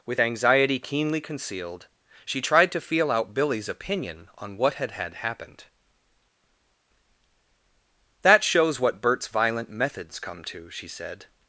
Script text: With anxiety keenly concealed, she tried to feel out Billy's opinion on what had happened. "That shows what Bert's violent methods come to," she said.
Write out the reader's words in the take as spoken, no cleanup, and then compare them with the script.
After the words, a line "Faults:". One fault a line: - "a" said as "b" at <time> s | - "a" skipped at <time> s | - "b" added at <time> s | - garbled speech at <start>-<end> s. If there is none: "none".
With anxiety keenly concealed, she tried to feel out Billy's opinion on what had had happened. "That shows what Bert's violent methods come to," she said.
Faults:
- "had" added at 4.9 s